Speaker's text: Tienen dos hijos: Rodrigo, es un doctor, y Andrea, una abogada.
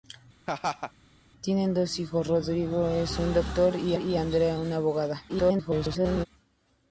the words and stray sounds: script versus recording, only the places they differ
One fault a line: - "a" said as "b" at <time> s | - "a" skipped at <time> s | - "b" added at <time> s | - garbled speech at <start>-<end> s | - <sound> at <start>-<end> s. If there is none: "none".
- laugh at 0.5-0.9 s
- "y" added at 4.0 s
- garbled speech at 5.3-6.3 s